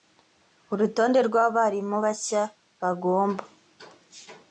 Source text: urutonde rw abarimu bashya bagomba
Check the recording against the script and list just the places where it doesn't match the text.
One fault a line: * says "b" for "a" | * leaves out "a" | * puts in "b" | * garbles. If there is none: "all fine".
all fine